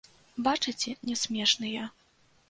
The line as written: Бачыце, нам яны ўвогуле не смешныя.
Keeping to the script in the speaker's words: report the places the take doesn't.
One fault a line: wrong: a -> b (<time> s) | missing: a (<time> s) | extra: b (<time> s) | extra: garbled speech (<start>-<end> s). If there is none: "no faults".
missing: нам яны ўвогуле (0.9 s)